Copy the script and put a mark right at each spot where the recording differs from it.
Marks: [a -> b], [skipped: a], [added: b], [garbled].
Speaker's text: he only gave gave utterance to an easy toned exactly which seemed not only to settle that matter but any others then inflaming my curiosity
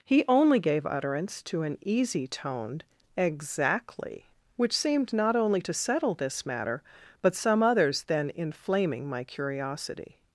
he only gave [skipped: gave] utterance to an easy toned exactly which seemed not only to settle [that -> this] matter but [any -> some] others then inflaming my curiosity